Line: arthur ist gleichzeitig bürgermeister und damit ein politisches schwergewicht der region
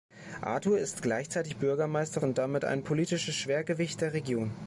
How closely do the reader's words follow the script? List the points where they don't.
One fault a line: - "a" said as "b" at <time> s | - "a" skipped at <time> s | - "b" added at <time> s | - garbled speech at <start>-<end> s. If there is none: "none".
none